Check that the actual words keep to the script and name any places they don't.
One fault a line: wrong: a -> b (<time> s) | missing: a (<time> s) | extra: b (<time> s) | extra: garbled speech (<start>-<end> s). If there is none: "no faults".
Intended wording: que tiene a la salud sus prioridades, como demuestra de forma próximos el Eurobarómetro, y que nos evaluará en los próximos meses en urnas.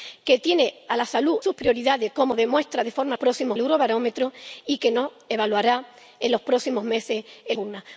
no faults